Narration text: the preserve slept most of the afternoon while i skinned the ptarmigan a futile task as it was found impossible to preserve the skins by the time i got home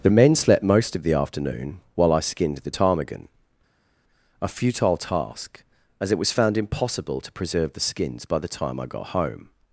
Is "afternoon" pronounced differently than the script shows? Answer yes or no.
no